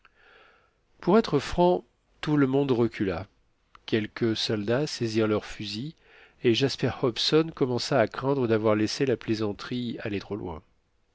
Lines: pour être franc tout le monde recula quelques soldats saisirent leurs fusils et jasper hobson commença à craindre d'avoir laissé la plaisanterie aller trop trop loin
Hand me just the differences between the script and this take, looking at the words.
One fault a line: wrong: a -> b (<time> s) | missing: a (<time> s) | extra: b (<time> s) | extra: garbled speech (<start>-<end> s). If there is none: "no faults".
missing: trop (10.4 s)